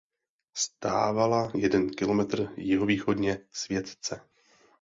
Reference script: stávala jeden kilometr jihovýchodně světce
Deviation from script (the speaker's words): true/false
false